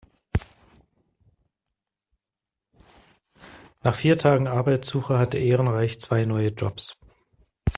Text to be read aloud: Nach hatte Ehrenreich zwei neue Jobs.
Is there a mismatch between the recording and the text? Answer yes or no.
yes